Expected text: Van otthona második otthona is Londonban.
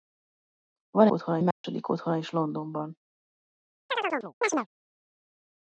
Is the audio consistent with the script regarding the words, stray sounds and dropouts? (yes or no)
no